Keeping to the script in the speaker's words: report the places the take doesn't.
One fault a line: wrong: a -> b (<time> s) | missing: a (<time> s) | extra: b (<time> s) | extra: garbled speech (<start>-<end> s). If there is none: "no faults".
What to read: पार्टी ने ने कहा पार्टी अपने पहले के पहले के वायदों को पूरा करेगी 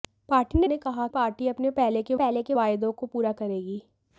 no faults